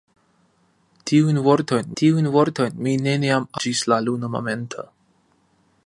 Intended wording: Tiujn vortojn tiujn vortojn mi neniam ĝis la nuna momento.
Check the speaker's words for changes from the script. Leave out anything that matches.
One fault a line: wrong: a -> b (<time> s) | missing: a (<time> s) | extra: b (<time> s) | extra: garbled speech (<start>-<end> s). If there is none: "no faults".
no faults